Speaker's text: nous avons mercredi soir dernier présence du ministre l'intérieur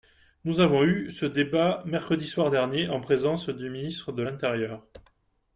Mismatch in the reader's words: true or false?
true